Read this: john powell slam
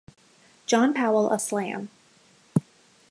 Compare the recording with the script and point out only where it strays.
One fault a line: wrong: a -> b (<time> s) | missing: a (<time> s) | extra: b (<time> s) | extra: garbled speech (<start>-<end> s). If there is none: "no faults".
extra: of (1.3 s)